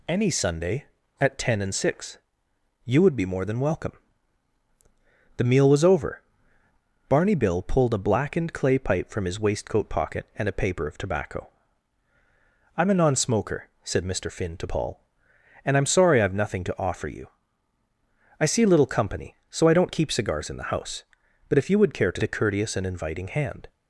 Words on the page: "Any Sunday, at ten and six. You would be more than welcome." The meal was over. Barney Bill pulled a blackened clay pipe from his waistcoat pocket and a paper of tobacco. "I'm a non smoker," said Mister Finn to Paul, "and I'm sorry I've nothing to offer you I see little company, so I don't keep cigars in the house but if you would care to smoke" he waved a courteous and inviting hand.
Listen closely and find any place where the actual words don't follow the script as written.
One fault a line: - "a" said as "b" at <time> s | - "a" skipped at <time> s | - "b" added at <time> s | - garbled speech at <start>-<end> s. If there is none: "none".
- "smoke he waved" skipped at 22.2 s